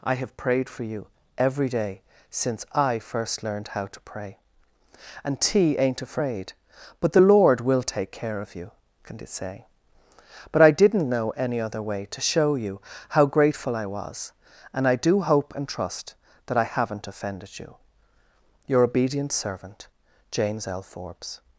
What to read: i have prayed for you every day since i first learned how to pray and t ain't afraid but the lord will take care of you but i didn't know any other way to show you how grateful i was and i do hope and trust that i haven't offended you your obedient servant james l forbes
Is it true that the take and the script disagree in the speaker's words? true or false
true